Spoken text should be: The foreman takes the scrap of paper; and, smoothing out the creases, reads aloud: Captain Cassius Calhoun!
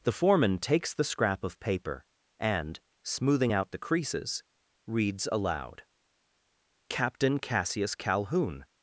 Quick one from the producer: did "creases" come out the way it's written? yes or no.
yes